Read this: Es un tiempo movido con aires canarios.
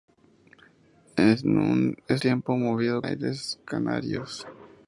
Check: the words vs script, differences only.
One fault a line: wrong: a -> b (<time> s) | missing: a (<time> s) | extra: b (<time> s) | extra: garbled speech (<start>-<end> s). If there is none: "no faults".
missing: un (1.4 s)
missing: con (3.0 s)